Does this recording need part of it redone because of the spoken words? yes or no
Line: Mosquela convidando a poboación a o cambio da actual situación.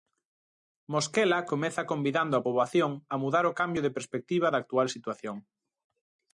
yes